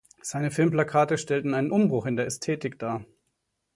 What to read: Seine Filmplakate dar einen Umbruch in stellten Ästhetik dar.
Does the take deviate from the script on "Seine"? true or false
false